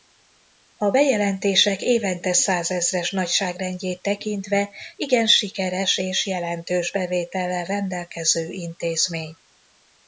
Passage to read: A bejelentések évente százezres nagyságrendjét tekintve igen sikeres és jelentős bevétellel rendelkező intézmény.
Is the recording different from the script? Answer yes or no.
no